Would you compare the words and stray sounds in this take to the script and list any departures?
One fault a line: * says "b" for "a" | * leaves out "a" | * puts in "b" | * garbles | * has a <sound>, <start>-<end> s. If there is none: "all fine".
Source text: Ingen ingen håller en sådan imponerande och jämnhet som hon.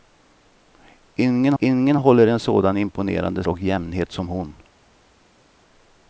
all fine